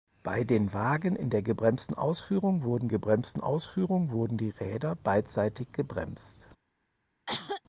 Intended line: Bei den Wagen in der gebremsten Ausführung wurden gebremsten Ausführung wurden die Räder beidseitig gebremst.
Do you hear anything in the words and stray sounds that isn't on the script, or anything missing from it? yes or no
yes